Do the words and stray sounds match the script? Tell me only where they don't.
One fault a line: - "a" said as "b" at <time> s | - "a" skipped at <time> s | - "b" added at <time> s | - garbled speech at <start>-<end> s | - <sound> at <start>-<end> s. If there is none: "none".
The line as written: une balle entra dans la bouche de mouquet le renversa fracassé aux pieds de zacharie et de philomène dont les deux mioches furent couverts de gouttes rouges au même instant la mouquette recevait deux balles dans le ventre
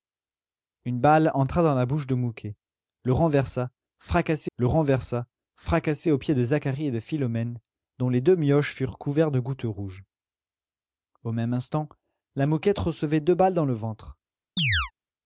- "le renversa fracassé" added at 4.6 s
- chirp at 14.6-14.9 s